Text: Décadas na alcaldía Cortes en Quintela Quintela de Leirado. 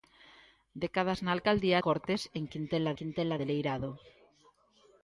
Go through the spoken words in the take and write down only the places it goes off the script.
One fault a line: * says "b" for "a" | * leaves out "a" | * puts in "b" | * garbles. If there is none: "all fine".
all fine